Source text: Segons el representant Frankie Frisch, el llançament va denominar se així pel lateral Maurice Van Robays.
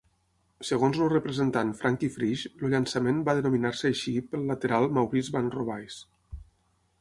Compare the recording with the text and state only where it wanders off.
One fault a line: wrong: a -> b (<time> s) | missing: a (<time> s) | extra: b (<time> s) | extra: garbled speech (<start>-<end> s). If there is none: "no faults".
no faults